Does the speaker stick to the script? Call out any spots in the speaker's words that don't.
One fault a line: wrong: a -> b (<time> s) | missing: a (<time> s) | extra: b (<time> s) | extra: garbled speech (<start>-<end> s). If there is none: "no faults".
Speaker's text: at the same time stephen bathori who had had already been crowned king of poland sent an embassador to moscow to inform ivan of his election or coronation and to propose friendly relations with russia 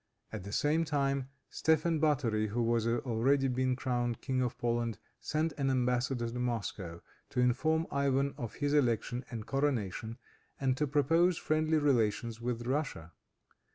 missing: had (2.9 s)
wrong: or -> and (9.3 s)